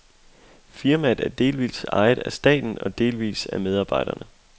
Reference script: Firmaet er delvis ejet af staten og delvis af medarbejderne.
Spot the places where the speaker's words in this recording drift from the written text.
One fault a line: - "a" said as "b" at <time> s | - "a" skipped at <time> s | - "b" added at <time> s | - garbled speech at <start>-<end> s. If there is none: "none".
none